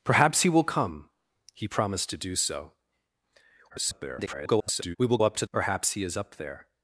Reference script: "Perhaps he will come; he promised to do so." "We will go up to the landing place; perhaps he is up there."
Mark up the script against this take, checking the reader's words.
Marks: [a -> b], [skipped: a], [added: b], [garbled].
"Perhaps he will come; he promised to do so." [garbled] "We will [skipped: go] up to [skipped: the landing place;] perhaps he is up there."